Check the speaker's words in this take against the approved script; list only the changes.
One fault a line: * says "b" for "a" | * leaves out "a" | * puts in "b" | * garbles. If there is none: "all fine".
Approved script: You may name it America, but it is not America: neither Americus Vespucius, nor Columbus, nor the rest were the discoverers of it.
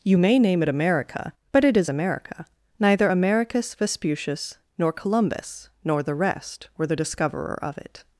* leaves out "not"
* says "discoverer" for "discoverers"